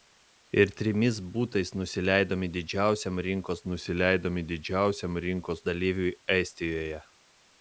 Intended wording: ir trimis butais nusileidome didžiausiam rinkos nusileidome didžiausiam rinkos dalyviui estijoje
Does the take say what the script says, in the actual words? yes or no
yes